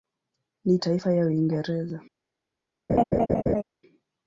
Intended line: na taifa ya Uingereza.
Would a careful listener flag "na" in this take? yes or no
no